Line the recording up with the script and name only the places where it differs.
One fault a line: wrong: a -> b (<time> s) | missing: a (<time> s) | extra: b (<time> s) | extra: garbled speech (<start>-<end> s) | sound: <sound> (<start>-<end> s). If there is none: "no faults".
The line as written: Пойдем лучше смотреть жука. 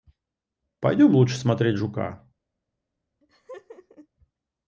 sound: laugh (3.2-4.1 s)